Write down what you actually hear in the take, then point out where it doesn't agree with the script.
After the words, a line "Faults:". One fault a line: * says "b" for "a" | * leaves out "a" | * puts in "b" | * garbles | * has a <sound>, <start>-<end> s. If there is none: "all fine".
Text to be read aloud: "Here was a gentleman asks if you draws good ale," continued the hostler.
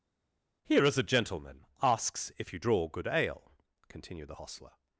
"Here is a gentleman asks if you draw good ale," continued the hostler.
Faults:
* says "is" for "was"
* says "draw" for "draws"